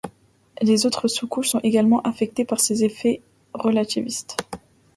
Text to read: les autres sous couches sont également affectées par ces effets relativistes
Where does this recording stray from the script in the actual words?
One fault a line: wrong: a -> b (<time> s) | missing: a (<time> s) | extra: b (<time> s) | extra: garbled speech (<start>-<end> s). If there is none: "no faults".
no faults